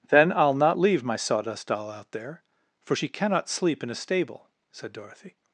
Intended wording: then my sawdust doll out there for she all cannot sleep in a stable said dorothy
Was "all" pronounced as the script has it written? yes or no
no